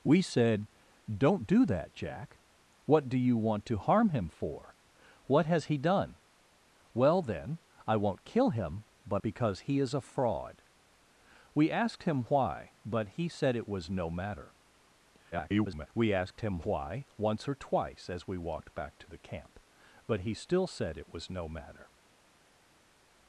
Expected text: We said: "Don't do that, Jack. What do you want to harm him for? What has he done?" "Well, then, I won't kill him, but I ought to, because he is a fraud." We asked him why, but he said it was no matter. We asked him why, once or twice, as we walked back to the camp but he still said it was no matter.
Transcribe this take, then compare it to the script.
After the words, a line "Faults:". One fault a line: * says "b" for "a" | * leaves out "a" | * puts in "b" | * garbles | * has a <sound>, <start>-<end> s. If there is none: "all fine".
We said: "Don't do that, Jack. What do you want to harm him for? What has he done?" "Well, then, I won't kill him, but because he is a fraud." We asked him why, but he said it was no matter. [garbled] We asked him why, once or twice, as we walked back to the camp but he still said it was no matter.
Faults:
* leaves out "I ought to"
* garbles